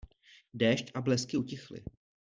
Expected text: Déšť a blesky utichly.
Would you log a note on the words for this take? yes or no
no